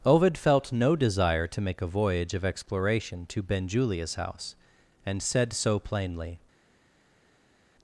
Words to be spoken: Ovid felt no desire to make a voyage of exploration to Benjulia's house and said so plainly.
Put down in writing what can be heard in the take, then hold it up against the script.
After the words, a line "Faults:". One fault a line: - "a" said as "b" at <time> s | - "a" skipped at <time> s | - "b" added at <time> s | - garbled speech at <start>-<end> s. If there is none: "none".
Ovid felt no desire to make a voyage of exploration to Benjulia's house and said so plainly.
Faults:
none